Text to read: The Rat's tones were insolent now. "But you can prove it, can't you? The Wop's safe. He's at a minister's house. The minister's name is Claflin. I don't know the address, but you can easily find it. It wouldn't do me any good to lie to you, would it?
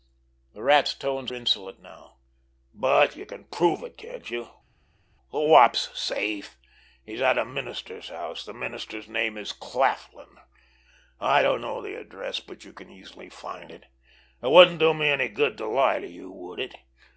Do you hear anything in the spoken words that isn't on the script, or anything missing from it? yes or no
yes